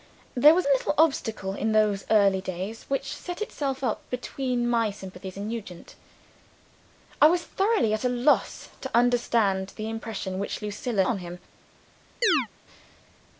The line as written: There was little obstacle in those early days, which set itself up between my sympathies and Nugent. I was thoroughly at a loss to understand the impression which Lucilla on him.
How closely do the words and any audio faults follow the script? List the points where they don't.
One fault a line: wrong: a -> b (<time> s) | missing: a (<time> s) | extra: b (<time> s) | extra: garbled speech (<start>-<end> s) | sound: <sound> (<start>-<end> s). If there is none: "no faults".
sound: chirp (12.2-12.5 s)